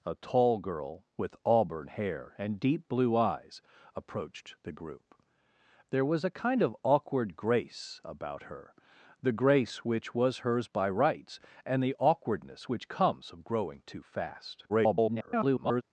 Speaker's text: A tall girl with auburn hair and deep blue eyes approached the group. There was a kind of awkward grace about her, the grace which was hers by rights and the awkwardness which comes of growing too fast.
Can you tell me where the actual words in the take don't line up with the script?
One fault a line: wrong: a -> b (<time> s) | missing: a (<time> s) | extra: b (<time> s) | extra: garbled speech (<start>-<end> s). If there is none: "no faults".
extra: garbled speech (14.7-15.8 s)